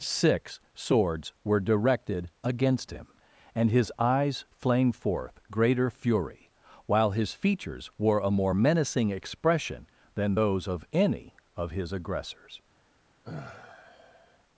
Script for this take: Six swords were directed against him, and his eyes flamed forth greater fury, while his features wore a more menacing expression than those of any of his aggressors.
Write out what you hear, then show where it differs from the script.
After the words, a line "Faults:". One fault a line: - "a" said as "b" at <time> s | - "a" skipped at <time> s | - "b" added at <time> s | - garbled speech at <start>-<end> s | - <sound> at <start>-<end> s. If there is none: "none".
Six swords were directed against him, and his eyes flamed forth greater fury, while his features wore a more menacing expression than those of any of his aggressors.
Faults:
- sigh at 13.2-14.4 s